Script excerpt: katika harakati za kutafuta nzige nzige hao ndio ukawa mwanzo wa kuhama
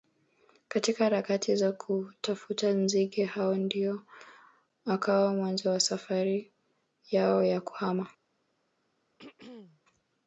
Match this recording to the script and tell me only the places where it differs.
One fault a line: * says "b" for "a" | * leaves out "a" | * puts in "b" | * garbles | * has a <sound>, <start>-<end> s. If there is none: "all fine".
* leaves out "nzige"
* puts in "safari yao ya"
* has a throat clearing, 9.2-9.8 s